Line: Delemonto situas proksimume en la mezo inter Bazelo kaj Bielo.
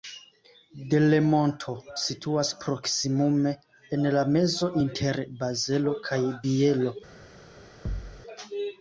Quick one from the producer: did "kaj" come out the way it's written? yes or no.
yes